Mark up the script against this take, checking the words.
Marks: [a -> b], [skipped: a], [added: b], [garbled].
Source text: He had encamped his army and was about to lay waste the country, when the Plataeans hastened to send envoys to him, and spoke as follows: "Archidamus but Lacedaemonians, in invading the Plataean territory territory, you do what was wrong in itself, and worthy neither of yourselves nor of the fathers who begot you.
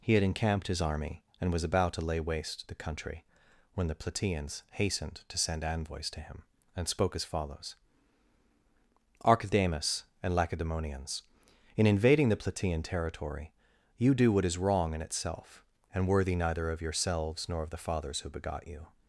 He had encamped his army and was about to lay waste the country, when the Plataeans hastened to send envoys to him, and spoke as follows: "Archidamus [but -> and] Lacedaemonians, in invading the Plataean territory [skipped: territory,] you do what [was -> is] wrong in itself, and worthy neither of yourselves nor of the fathers who begot you.